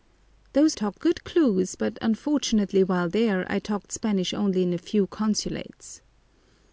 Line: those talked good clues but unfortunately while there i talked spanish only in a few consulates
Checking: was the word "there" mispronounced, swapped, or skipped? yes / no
no